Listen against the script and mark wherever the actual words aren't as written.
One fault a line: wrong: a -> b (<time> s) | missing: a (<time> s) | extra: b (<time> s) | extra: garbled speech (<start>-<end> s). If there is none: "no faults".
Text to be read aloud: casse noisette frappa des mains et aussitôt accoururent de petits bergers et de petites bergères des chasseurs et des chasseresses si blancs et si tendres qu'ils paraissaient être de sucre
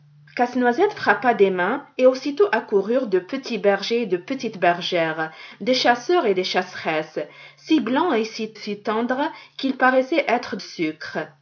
extra: si (8.5 s)
missing: de (10.6 s)